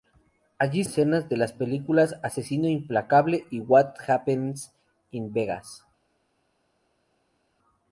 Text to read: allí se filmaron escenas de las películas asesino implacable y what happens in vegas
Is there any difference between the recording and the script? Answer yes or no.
yes